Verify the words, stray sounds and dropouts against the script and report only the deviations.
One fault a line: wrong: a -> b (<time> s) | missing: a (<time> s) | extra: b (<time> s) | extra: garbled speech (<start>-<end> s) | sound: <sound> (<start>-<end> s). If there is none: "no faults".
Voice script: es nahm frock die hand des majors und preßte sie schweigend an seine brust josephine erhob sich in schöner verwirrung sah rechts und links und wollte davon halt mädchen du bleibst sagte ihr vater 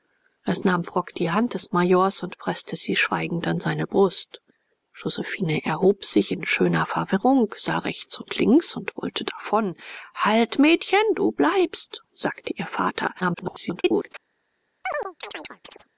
extra: garbled speech (13.2-14.1 s)
sound: chirp (14.8-15.9 s)